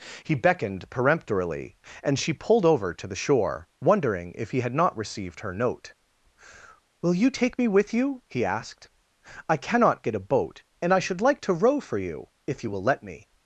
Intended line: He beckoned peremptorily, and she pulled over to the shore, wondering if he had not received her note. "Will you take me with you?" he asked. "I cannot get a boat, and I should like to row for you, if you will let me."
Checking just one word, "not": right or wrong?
right